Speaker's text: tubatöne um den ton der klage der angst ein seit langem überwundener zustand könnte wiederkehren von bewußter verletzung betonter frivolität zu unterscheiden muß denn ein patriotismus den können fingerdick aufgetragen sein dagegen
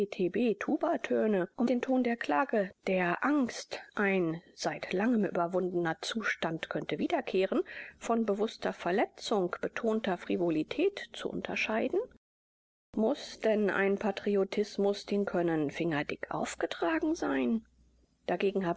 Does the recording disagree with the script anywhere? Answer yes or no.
no